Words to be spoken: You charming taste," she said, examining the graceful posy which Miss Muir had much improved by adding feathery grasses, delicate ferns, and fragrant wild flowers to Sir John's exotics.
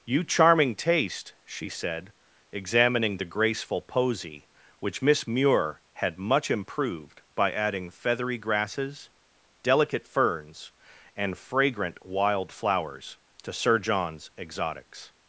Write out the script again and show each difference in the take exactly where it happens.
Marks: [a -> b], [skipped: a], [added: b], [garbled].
You charming taste," she said, examining the graceful posy which Miss Muir had much improved by adding feathery grasses, delicate ferns, and fragrant wild flowers to Sir John's exotics.